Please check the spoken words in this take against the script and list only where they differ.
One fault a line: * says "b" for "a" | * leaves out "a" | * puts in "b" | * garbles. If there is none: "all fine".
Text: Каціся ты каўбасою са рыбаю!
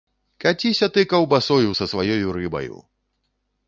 * puts in "сваёю"